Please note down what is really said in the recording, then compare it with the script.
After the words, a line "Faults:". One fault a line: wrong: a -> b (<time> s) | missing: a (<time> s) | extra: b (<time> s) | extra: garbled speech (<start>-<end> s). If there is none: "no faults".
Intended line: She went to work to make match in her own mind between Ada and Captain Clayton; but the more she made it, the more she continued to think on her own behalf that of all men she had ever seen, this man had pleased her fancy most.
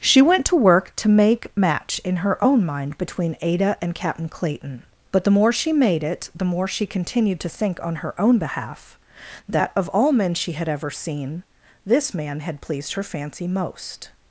She went to work to make match in her own mind between Ada and Captain Clayton; but the more she made it, the more she continued to think on her own behalf that of all men she had ever seen, this man had pleased her fancy most.
Faults:
no faults